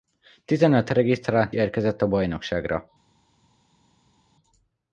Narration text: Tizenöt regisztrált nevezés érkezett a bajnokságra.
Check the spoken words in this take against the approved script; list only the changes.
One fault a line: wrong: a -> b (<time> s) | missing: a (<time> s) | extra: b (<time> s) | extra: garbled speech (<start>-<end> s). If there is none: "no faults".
missing: nevezés (1.5 s)